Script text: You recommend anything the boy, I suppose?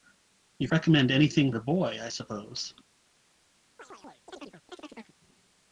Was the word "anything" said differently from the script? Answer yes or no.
no